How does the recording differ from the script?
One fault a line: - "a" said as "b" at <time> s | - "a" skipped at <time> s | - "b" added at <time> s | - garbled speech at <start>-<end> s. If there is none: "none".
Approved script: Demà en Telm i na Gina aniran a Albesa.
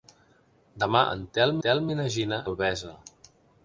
- "Telm" added at 1.7 s
- "aniran a" skipped at 2.4 s